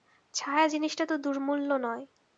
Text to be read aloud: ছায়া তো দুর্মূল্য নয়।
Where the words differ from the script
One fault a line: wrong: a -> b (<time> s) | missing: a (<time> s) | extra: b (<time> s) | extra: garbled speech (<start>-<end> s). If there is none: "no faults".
extra: জিনিসটা (0.7 s)